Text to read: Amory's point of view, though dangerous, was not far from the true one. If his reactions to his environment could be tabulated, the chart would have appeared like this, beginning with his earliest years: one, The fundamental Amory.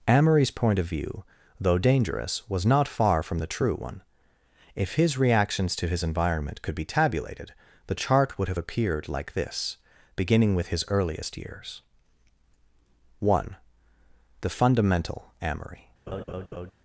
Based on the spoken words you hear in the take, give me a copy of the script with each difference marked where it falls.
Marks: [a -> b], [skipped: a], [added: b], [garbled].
Amory's point of view, though dangerous, was not far from the true one. If his reactions to his environment could be tabulated, the chart would have appeared like this, beginning with his earliest years: one, The fundamental Amory.